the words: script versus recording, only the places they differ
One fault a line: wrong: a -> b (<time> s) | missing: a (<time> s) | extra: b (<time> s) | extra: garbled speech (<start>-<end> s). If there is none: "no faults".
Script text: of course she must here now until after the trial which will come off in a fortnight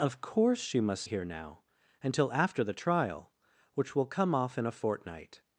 no faults